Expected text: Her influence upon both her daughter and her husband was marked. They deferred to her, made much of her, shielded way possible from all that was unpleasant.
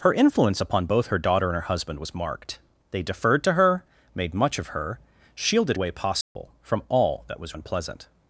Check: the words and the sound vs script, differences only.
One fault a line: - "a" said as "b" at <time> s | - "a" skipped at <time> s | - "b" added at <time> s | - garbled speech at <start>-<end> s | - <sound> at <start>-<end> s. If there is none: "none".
- dropout at 6.2-6.4 s